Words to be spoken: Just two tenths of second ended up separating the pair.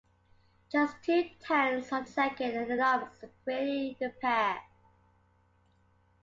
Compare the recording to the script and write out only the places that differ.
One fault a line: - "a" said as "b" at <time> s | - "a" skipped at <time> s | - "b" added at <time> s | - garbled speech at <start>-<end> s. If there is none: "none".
none